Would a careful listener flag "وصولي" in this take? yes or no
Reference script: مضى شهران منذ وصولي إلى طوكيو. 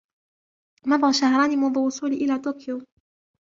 no